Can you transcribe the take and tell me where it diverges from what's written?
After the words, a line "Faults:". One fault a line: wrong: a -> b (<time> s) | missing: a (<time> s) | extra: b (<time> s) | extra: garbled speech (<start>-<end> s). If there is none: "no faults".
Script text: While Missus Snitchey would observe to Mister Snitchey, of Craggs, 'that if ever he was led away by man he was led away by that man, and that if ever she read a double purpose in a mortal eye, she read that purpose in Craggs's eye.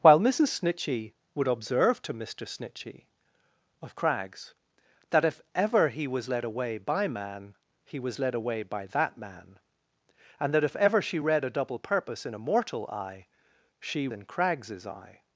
While Missus Snitchey would observe to Mister Snitchey, of Craggs, 'that if ever he was led away by man he was led away by that man, and that if ever she read a double purpose in a mortal eye, she in Craggs's eye.
Faults:
missing: read that purpose (14.1 s)